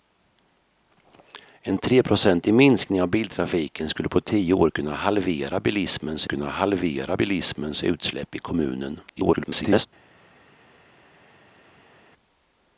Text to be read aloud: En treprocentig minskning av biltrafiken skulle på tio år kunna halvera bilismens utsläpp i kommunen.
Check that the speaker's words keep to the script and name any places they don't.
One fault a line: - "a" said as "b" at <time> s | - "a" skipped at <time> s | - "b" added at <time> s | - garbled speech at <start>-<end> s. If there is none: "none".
- "kunna halvera bilismens" added at 6.2 s
- garbled speech at 9.1-9.9 s